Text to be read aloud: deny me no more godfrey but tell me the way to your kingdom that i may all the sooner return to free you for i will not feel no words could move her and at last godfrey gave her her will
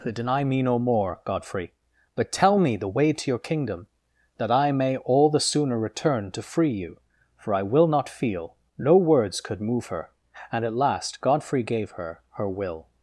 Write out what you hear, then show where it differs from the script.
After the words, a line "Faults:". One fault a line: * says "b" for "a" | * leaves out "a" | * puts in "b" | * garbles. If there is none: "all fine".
deny me no more godfrey but tell me the way to your kingdom that i may all the sooner return to free you for i will not feel no words could move her and at last godfrey gave her her will
Faults:
all fine